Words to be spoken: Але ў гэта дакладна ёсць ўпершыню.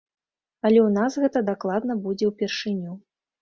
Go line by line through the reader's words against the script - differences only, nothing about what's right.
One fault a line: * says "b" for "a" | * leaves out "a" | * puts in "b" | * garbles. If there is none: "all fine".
* puts in "нас"
* says "будзе" for "ёсць"